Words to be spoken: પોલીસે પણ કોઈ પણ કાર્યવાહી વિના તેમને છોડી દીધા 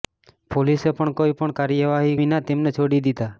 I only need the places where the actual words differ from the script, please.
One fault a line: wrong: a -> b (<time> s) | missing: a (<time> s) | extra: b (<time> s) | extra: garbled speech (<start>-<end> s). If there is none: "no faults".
no faults